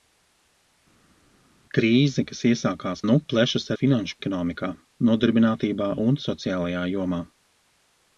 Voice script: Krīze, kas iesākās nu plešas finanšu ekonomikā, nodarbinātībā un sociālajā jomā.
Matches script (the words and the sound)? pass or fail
pass